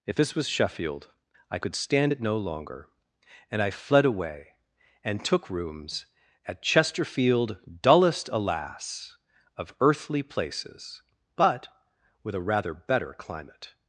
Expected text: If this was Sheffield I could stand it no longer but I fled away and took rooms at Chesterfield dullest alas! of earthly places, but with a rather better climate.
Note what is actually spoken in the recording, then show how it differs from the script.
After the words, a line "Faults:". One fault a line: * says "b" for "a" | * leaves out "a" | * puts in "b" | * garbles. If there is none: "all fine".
If this was Sheffield I could stand it no longer and I fled away and took rooms at Chesterfield dullest alas! of earthly places, but with a rather better climate.
Faults:
* says "and" for "but"